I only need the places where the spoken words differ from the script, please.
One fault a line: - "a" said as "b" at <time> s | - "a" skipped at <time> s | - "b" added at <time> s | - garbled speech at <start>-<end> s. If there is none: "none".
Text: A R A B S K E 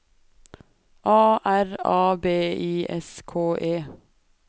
- "I" added at 2.3 s